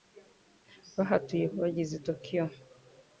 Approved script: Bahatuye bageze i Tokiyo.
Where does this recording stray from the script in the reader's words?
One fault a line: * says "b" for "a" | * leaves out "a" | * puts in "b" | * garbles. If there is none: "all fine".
all fine